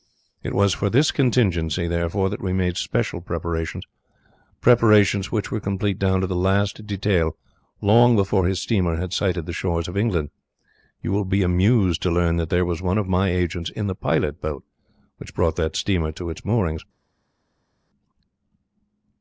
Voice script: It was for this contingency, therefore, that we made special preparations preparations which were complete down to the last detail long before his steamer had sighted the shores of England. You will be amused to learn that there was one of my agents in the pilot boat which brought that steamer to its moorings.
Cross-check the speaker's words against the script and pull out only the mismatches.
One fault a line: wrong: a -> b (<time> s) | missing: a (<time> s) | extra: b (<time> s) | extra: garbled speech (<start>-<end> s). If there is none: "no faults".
no faults